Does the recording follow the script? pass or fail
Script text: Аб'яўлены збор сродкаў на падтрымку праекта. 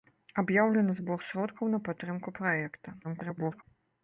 fail